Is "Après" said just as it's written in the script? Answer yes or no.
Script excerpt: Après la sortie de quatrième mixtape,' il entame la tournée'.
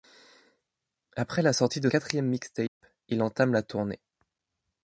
yes